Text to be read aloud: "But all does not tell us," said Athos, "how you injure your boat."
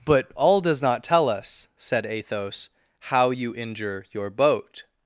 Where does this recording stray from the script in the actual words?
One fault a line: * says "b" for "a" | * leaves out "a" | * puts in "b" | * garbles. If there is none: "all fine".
all fine